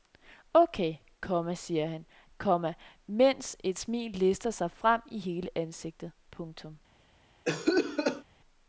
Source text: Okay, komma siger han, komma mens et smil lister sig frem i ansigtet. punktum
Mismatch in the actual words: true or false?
true